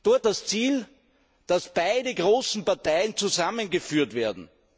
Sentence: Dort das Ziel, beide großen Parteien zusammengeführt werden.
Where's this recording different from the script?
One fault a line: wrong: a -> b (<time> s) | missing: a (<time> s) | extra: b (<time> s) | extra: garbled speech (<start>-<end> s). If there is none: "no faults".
extra: dass (1.5 s)